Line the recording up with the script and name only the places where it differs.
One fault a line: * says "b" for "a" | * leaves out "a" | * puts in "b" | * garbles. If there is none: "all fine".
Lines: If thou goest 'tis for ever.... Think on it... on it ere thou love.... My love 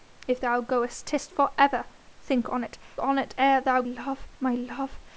all fine